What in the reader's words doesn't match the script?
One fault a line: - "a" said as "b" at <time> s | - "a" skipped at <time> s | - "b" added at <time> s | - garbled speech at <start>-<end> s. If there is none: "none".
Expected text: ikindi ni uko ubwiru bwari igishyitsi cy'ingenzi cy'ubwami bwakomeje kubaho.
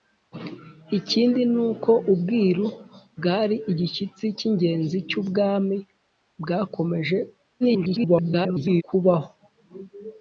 - garbled speech at 7.6-8.8 s